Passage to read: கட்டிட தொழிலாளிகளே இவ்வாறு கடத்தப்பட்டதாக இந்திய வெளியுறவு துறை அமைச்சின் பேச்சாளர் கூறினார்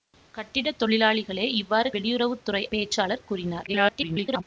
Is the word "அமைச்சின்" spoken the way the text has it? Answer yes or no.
no